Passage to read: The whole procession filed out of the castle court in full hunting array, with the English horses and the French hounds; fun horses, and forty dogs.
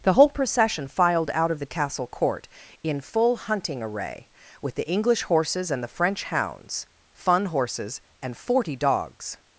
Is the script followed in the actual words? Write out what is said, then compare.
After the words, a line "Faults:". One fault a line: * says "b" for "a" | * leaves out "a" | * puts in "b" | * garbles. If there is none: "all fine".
The whole procession filed out of the castle court in full hunting array, with the English horses and the French hounds; fun horses, and forty dogs.
Faults:
all fine